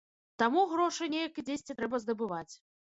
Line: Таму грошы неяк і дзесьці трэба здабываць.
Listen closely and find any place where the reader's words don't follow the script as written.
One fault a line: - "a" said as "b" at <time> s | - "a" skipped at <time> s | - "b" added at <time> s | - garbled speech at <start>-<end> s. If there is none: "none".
none